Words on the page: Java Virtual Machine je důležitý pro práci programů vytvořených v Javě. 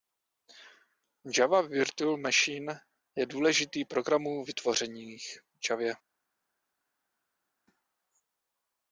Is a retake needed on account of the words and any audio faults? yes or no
yes